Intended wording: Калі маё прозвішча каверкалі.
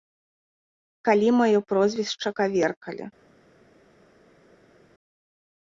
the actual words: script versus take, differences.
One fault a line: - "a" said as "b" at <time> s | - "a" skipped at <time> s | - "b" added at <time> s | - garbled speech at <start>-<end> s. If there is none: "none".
none